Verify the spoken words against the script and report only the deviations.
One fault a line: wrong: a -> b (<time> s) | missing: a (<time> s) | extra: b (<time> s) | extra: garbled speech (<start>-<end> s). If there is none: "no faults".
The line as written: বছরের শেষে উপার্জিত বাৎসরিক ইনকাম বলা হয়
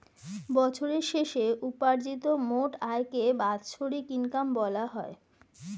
extra: মোট আয়কে (2.5 s)